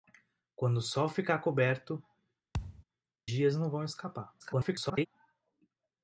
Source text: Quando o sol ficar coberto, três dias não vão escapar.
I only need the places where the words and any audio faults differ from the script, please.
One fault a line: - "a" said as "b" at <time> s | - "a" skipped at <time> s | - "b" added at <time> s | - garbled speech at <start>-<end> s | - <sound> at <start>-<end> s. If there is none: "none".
- "três" skipped at 2.0 s
- thud at 2.5-2.8 s
- garbled speech at 4.4-5.1 s